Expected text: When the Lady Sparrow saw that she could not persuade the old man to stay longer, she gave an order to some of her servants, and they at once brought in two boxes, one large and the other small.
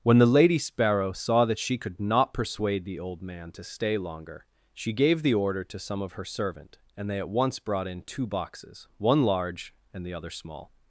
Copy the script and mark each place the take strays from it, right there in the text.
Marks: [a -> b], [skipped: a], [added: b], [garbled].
When the Lady Sparrow saw that she could not persuade the old man to stay longer, she gave [an -> the] order to some of her [servants, -> servant] and they at once brought in two boxes, one large and the other small.